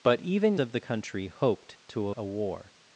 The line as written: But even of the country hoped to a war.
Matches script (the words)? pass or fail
pass